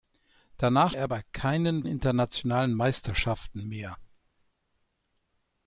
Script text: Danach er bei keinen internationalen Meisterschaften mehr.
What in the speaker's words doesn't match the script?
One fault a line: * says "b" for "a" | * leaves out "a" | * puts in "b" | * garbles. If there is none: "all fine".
all fine